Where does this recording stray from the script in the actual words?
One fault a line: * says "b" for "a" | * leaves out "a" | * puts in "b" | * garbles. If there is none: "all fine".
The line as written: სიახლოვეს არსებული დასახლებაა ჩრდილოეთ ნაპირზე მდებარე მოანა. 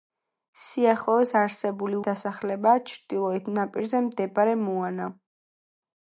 all fine